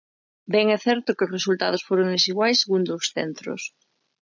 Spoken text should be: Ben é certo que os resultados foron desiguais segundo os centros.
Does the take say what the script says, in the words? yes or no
yes